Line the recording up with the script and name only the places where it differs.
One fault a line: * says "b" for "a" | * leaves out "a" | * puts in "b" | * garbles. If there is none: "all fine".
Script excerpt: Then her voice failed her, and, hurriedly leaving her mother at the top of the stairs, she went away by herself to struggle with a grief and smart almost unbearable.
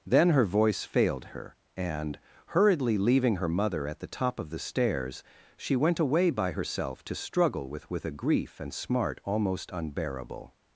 * puts in "with"